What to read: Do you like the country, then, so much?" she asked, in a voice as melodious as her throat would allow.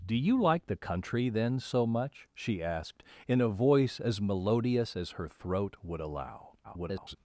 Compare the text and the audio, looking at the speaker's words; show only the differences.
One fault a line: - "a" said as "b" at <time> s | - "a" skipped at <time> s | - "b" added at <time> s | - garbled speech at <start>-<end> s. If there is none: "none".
- garbled speech at 6.6-7.2 s